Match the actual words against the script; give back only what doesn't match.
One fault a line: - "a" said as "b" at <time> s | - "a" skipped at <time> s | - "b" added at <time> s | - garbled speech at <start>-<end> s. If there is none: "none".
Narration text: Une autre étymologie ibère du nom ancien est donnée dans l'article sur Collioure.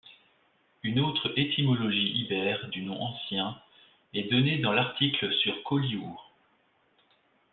none